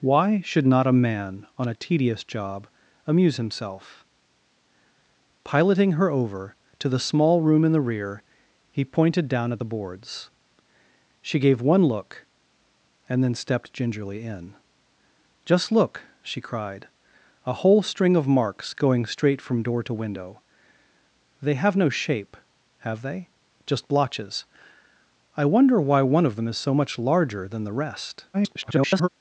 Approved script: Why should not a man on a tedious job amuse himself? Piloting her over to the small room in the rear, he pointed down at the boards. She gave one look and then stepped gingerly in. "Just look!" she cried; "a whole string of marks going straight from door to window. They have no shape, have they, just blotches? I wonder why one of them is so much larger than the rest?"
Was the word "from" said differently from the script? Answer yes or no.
no